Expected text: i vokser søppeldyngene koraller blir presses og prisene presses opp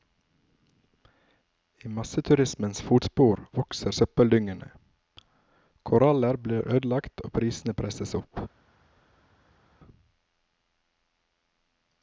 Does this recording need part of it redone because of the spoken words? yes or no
yes